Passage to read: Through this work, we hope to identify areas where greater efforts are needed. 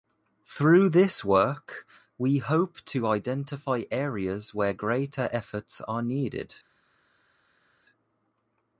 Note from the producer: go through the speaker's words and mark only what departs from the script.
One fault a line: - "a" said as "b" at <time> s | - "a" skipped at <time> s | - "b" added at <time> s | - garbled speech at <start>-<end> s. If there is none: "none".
none